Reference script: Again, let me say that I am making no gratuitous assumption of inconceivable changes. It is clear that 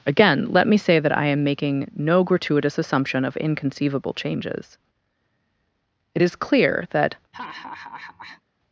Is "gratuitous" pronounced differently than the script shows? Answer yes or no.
no